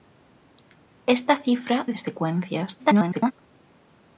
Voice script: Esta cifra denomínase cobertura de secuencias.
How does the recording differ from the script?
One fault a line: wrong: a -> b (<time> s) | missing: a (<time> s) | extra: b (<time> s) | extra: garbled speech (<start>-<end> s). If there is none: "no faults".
missing: denomínase cobertura (1.8 s)
extra: garbled speech (2.8-3.3 s)